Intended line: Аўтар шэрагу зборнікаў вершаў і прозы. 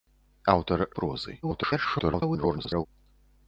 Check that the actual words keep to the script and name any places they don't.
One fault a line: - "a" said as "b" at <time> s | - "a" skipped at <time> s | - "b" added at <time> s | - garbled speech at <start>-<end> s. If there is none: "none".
- "шэрагу зборнікаў вершаў" skipped at 0.8 s
- garbled speech at 1.4-2.9 s